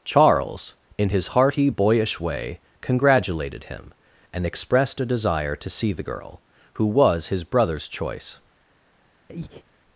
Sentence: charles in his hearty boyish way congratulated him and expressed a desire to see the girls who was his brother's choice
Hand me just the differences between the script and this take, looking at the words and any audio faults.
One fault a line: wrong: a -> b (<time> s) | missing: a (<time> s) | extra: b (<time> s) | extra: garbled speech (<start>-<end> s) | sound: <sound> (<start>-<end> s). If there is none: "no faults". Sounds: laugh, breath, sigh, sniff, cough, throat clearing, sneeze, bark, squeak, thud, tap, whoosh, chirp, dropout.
wrong: girls -> girl (6.0 s)
sound: breath (9.3-9.6 s)